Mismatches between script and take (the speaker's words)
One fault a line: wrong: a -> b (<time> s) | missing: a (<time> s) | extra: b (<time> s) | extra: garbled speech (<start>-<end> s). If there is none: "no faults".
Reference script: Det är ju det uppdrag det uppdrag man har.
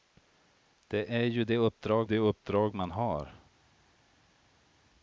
no faults